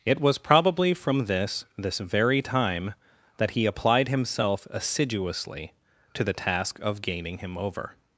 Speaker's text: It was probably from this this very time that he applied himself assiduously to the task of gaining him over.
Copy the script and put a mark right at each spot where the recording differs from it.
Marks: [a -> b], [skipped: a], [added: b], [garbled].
It was probably from this this very time that he applied himself assiduously to the task of gaining him over.